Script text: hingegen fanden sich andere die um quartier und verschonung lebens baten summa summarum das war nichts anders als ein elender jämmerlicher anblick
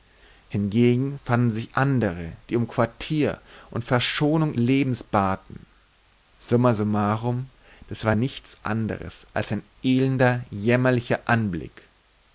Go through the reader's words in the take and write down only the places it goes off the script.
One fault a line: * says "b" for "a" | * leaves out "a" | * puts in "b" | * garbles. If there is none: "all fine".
all fine